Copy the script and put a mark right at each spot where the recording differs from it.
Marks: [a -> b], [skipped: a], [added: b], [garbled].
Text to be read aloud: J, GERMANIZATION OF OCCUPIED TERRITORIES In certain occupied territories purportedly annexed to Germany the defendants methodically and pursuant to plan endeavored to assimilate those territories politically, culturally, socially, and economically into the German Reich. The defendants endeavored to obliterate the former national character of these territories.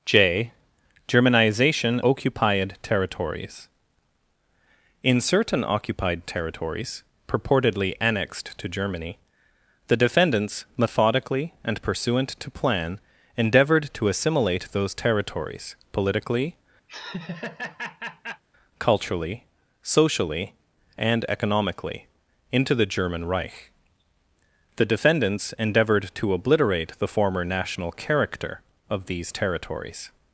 J, GERMANIZATION [skipped: OF] OCCUPIED TERRITORIES In certain occupied territories purportedly annexed to Germany the defendants methodically and pursuant to plan endeavored to assimilate those territories politically, culturally, socially, and economically into the German Reich. The defendants endeavored to obliterate the former national character of these territories.